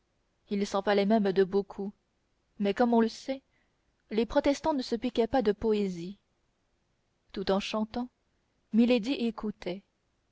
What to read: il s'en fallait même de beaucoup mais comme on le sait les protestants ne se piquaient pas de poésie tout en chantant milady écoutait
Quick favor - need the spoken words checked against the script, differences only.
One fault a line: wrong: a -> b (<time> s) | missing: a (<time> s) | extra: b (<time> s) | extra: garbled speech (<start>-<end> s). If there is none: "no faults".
no faults